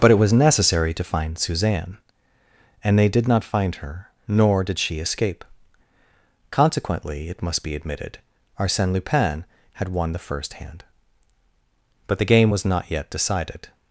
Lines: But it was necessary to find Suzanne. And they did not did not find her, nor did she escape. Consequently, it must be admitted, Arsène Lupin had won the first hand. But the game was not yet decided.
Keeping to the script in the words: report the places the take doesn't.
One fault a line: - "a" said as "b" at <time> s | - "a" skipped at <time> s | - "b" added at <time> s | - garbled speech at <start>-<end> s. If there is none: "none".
- "did not" skipped at 3.4 s